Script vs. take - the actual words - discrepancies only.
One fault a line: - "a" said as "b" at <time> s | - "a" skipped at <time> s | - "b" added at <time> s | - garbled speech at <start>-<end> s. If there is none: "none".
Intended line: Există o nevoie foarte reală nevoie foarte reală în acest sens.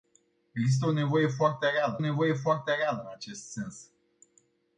none